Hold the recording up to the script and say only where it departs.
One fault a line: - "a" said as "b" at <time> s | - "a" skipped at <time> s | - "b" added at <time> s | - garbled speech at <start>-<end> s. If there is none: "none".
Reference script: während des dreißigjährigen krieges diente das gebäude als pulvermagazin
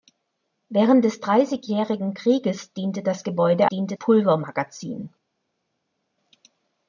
- "als" said as "diente" at 3.7 s